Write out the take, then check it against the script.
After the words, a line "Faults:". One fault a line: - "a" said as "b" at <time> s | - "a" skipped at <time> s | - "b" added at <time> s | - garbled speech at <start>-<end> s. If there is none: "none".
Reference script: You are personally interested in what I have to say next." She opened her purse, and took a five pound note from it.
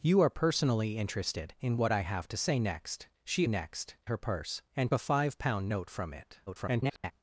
You are personally interested in what I have to say next." She next her purse, and a five pound note from it. [garbled]
Faults:
- "opened" said as "next" at 3.5 s
- "took" skipped at 4.9 s
- garbled speech at 6.5-7.1 s